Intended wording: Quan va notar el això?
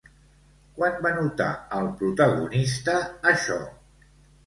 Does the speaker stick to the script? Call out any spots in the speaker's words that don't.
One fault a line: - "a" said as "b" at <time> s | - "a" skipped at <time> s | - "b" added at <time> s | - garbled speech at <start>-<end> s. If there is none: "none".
- "protagonista" added at 2.0 s